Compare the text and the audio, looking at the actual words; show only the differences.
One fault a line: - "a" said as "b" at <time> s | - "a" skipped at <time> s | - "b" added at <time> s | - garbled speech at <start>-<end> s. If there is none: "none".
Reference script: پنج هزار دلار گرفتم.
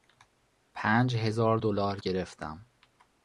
none